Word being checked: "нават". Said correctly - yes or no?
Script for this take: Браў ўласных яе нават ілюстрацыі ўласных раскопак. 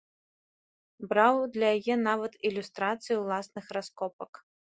yes